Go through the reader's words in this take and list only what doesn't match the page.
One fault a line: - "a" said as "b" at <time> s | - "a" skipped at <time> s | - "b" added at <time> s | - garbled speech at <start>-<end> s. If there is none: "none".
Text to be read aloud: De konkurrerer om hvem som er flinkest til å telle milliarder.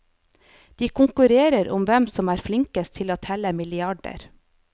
none